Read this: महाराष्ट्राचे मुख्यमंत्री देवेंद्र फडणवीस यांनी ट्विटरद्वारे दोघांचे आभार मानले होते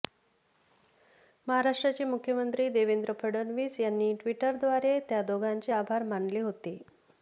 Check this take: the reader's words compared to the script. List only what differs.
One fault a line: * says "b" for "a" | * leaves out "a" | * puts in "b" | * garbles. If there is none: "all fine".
* puts in "त्या"